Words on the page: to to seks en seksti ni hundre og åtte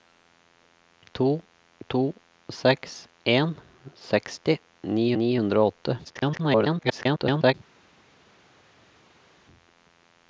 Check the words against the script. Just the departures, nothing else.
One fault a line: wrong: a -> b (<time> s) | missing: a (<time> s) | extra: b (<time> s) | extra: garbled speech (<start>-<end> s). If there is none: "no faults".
extra: ni (5.2 s)
extra: garbled speech (6.0-7.5 s)